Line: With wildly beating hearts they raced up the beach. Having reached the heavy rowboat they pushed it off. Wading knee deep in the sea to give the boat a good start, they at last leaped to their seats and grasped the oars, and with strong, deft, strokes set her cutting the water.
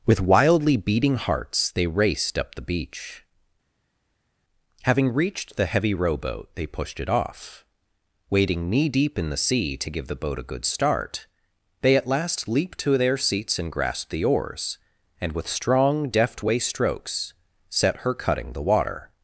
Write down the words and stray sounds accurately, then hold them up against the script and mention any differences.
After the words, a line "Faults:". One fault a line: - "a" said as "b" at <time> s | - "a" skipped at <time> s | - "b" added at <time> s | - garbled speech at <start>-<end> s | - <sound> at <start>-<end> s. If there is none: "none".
With wildly beating hearts they raced up the beach. Having reached the heavy rowboat they pushed it off. Wading knee deep in the sea to give the boat a good start, they at last leaped to their seats and grasped the oars, and with strong, deft, way strokes set her cutting the water.
Faults:
- "way" added at 16.4 s